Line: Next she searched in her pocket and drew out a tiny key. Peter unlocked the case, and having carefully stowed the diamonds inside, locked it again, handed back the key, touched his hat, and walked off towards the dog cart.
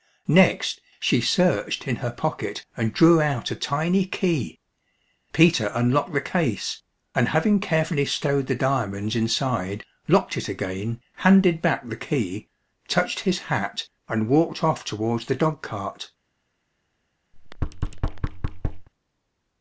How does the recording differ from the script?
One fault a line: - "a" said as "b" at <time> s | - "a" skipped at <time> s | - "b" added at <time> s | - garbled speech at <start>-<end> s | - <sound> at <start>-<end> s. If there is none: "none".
- thud at 17.3-18.9 s